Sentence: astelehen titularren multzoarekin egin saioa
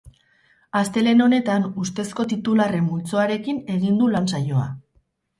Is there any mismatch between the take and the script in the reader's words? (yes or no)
yes